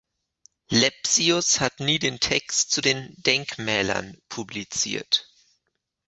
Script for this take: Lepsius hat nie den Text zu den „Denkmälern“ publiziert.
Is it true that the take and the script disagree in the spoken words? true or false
false